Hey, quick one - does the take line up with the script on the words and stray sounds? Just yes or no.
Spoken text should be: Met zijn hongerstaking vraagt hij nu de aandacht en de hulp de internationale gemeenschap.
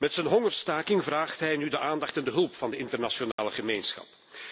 no